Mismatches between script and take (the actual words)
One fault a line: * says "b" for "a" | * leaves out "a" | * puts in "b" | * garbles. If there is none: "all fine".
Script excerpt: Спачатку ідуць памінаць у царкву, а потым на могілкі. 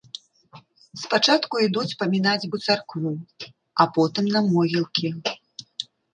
all fine